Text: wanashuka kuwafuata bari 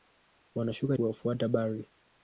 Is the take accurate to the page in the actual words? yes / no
yes